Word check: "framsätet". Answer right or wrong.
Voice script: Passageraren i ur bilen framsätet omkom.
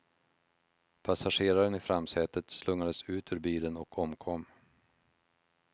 wrong